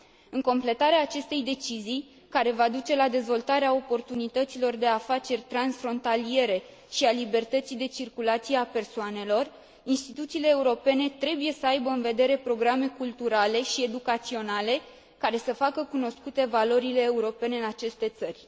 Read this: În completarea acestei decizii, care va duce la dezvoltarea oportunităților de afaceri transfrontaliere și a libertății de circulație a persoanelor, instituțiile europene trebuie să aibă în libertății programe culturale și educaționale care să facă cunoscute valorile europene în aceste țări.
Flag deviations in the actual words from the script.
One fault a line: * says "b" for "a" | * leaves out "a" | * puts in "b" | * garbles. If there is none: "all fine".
* says "vedere" for "libertății"